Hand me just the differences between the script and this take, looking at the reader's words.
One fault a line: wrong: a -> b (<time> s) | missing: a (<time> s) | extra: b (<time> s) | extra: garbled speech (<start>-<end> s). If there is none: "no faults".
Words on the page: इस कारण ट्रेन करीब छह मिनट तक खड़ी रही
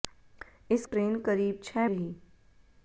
missing: कारण (0.8 s)
missing: मिनट तक खड़ी (1.9 s)